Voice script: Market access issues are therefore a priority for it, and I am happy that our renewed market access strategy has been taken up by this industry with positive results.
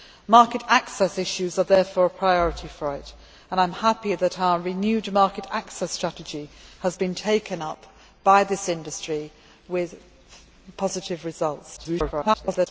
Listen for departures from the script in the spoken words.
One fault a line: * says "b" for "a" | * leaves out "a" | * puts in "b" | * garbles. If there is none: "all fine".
* garbles